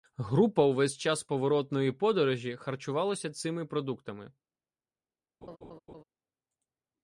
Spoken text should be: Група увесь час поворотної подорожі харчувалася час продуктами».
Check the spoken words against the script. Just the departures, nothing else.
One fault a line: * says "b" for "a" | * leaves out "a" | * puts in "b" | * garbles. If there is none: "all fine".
* says "цими" for "час"